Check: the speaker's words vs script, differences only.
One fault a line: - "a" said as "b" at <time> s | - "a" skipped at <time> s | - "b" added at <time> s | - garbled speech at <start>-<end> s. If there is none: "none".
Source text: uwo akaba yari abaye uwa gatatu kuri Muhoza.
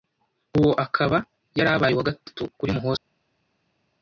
none